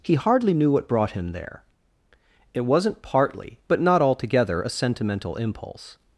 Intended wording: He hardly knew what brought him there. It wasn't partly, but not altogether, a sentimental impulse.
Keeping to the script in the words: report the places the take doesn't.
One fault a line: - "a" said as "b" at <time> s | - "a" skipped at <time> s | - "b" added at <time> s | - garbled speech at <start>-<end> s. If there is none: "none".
none